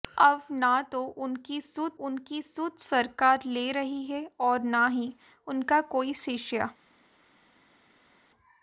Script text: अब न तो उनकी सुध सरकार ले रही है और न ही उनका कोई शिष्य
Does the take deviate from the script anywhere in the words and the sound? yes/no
yes